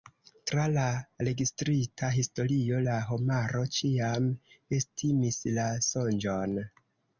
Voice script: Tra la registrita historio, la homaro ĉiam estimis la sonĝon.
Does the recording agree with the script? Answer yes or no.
yes